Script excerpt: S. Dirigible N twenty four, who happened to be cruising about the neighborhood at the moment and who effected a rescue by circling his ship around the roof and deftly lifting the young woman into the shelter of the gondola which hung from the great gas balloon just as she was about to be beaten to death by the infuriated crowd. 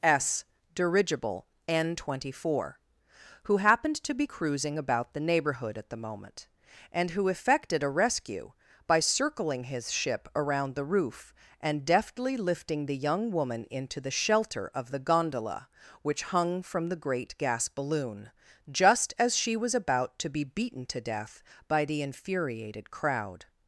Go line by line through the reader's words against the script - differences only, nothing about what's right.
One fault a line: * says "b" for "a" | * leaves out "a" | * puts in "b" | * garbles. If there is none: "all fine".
all fine